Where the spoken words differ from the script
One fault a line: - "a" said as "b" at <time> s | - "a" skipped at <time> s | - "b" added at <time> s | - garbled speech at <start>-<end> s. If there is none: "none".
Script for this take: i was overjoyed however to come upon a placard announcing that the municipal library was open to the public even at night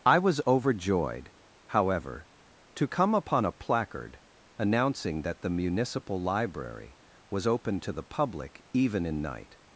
- "at" said as "in" at 9.1 s